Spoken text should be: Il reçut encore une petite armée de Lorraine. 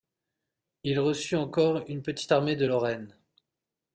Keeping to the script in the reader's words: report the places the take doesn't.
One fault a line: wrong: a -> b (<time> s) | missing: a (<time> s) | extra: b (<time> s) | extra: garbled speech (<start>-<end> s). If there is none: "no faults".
no faults